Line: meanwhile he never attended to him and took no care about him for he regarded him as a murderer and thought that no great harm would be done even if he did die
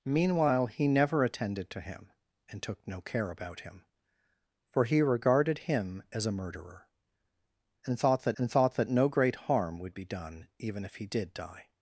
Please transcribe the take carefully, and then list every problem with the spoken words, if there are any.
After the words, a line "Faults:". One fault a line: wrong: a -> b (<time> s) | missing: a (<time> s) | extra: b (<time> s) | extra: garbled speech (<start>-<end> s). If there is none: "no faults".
meanwhile he never attended to him and took no care about him for he regarded him as a murderer and thought that and thought that no great harm would be done even if he did die
Faults:
extra: and thought that (8.4 s)